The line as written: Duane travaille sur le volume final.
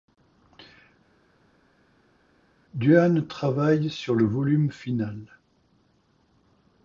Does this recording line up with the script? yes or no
yes